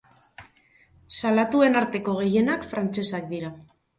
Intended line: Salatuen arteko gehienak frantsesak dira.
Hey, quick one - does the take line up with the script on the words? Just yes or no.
yes